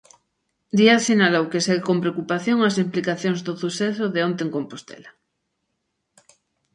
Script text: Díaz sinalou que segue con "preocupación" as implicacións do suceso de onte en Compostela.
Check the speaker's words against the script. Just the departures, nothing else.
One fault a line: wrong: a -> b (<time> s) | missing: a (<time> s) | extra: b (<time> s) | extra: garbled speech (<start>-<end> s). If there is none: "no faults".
no faults